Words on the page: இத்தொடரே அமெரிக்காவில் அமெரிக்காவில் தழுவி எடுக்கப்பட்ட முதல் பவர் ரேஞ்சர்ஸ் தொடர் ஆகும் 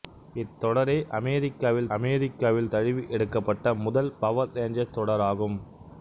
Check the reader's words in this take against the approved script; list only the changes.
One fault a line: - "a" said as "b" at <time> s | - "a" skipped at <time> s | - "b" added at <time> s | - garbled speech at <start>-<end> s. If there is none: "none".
none